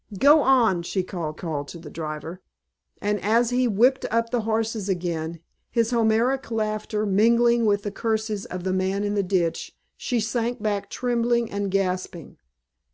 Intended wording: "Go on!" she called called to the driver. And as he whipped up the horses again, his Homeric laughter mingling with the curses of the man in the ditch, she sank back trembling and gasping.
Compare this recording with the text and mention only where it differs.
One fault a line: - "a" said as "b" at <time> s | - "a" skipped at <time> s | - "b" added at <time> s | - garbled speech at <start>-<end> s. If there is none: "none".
none